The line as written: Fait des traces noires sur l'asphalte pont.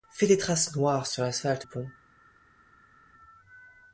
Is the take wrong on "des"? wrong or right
right